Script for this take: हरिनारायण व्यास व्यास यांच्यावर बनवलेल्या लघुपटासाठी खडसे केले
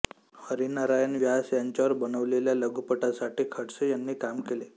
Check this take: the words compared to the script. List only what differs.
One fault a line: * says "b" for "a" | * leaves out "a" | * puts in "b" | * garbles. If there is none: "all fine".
* leaves out "व्यास"
* puts in "यांनी काम"